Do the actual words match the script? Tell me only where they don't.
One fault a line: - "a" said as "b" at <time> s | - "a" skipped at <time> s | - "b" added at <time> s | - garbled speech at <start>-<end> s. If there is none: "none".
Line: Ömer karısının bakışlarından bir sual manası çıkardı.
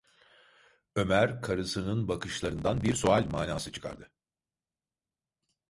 none